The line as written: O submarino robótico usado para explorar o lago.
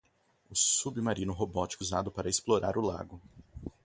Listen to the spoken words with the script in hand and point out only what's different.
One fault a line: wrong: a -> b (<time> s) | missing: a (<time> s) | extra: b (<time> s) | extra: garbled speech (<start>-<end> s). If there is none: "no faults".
no faults